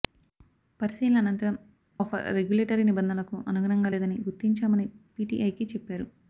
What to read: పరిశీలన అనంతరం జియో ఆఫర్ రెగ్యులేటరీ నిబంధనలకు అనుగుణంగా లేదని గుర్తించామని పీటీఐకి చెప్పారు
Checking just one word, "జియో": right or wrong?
wrong